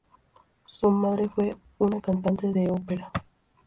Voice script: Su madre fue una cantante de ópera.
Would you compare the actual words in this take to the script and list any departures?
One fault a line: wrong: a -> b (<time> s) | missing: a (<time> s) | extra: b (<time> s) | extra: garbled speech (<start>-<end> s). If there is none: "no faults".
no faults